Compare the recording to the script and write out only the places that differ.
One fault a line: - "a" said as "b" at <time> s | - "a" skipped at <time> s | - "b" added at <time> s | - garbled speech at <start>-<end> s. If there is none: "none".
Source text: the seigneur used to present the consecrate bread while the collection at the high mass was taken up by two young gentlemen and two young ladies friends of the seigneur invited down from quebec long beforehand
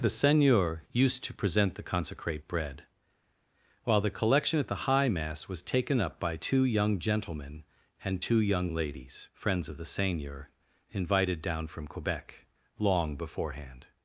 none